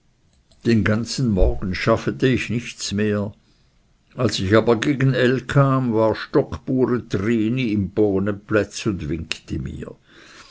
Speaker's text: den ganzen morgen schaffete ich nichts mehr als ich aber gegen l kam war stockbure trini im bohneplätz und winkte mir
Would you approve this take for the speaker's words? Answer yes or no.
yes